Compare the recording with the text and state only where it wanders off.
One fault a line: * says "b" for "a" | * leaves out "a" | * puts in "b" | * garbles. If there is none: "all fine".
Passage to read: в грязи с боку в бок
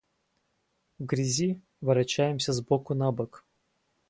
* puts in "ворочаемся"
* says "на" for "в"